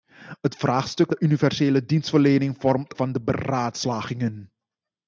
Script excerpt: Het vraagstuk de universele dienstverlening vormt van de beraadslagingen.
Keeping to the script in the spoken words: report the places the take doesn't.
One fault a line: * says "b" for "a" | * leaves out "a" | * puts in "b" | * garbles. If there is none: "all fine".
all fine